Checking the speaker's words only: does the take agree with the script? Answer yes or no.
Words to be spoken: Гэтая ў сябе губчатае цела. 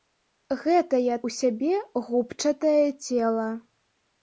yes